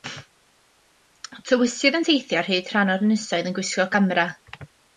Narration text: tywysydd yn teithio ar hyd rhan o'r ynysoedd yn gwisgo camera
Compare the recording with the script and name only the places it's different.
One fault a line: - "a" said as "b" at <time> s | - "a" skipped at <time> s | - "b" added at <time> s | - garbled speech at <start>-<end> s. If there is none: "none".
none